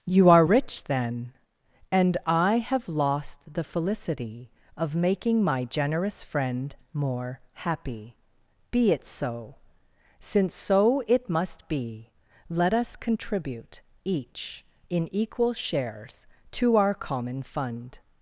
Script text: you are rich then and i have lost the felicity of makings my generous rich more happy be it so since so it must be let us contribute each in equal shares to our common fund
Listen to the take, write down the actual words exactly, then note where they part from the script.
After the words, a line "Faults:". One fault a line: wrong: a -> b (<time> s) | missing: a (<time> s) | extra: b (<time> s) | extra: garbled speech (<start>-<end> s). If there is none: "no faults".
you are rich then and i have lost the felicity of making my generous friend more happy be it so since so it must be let us contribute each in equal shares to our common fund
Faults:
wrong: makings -> making (4.9 s)
wrong: rich -> friend (6.2 s)